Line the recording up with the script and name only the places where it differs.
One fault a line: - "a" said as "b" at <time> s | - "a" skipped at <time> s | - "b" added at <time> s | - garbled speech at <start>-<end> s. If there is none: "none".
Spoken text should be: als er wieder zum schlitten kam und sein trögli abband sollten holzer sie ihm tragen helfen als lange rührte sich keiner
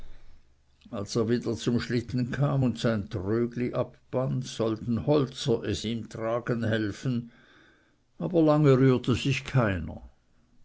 - "sie" said as "es" at 5.6 s
- "als" said as "aber" at 8.2 s